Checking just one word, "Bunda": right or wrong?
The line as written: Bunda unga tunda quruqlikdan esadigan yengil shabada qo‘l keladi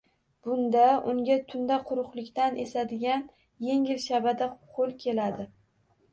right